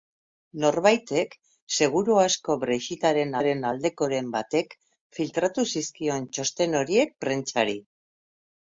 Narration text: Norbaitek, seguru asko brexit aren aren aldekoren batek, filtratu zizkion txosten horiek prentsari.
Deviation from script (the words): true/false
false